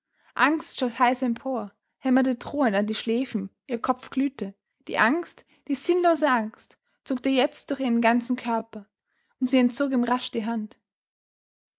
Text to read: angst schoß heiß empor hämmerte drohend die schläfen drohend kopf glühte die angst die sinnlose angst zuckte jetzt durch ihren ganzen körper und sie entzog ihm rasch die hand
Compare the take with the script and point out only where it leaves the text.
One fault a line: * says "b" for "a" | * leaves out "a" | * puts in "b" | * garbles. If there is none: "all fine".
* puts in "an"
* says "ihr" for "drohend"